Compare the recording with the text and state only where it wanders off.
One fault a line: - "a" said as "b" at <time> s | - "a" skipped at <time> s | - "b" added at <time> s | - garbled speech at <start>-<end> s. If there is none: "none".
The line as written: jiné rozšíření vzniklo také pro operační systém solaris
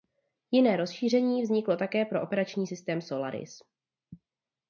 none